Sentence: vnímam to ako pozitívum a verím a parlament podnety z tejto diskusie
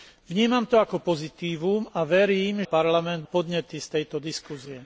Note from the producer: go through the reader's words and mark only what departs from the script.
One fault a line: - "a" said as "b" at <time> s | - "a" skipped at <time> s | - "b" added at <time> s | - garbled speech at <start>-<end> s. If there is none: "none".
none